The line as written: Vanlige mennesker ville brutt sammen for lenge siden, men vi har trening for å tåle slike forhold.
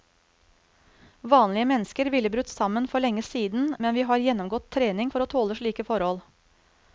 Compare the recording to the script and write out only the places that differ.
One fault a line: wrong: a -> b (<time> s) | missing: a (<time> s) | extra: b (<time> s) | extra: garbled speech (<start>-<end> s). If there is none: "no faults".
extra: gjennomgått (4.2 s)